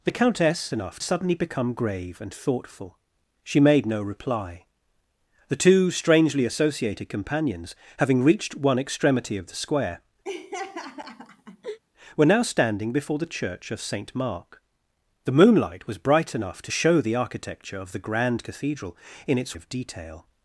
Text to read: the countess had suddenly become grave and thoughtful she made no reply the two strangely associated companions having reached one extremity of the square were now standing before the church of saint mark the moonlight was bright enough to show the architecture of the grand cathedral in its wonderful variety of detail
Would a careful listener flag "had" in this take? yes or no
yes